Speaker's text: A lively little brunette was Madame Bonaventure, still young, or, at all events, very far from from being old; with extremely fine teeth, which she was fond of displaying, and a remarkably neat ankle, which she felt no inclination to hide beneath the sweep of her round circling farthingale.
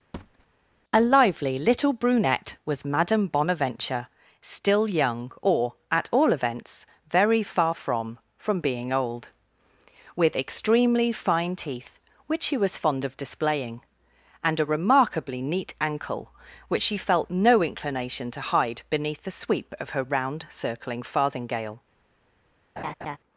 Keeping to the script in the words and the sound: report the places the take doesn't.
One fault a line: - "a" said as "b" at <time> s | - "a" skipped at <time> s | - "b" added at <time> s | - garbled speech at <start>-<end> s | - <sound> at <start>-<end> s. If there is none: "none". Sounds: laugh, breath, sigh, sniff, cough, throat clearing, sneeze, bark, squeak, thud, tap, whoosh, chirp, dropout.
- thud at 0.1-0.5 s
- laugh at 22.8-23.2 s